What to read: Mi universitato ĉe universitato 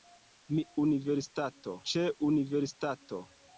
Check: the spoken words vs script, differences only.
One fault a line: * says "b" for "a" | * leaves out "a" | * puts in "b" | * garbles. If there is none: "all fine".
all fine